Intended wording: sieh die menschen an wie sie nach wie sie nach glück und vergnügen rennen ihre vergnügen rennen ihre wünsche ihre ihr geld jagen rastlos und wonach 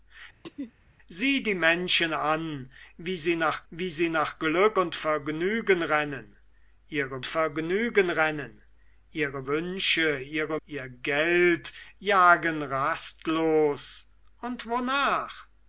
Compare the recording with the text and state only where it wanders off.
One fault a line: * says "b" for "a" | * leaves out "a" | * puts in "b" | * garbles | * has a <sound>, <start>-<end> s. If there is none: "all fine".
* has a throat clearing, 0.4-0.7 s